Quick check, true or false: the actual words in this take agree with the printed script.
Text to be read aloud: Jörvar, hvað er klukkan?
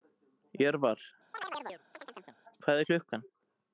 true